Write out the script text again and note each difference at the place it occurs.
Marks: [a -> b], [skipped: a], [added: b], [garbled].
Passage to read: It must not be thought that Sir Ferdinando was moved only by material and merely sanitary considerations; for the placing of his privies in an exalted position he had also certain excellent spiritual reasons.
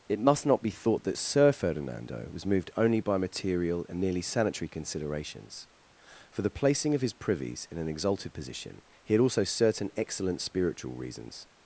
It must not be thought that Sir Ferdinando was moved only by material and [merely -> nearly] sanitary considerations; for the placing of his privies in an exalted position he had also certain excellent spiritual reasons.